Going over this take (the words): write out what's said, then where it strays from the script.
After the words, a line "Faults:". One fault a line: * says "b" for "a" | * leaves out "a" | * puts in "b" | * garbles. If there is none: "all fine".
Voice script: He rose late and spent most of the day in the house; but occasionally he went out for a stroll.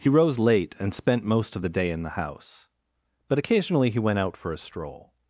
He rose late and spent most of the day in the house; but occasionally he went out for a stroll.
Faults:
all fine